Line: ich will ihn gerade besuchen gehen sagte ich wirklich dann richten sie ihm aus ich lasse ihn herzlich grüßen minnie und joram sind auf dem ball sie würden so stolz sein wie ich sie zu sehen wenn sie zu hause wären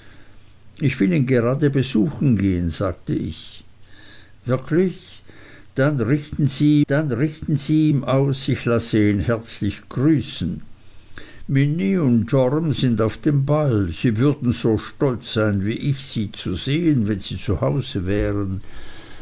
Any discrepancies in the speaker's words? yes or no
yes